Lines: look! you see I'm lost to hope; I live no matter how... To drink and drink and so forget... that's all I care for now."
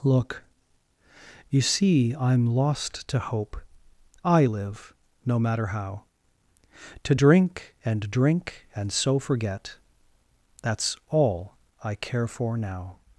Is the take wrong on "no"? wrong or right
right